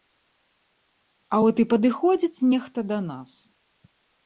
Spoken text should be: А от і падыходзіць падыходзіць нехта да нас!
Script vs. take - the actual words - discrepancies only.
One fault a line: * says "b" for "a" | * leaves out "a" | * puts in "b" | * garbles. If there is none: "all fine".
* leaves out "падыходзіць"